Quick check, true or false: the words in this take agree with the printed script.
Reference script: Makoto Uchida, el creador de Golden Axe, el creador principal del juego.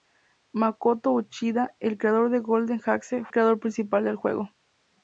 true